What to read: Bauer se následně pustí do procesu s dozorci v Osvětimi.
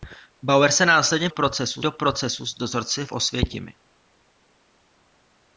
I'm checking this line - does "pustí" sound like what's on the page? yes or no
no